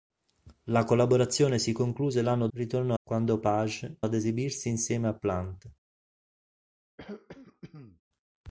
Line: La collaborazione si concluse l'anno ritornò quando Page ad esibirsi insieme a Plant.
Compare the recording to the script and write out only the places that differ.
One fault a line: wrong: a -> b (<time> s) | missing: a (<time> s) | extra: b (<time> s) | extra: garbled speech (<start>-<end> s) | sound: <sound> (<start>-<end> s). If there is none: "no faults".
sound: throat clearing (7.0-8.0 s)